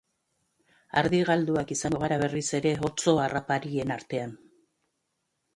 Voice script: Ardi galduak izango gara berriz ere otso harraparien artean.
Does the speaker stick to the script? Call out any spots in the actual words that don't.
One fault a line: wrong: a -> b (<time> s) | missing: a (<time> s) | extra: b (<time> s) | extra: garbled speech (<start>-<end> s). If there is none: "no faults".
no faults